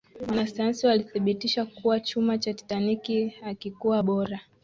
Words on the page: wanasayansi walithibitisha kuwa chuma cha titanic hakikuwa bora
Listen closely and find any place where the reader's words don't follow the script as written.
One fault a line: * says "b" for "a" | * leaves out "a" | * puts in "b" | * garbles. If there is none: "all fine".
all fine